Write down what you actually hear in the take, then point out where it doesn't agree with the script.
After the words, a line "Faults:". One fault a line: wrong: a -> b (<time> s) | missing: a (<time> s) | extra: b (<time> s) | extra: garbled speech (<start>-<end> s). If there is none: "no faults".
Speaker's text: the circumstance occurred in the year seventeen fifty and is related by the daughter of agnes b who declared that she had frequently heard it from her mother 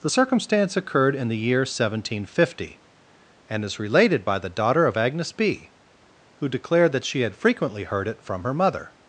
the circumstance occurred in the year seventeen fifty and is related by the daughter of agnes b who declared that she had frequently heard it from her mother
Faults:
no faults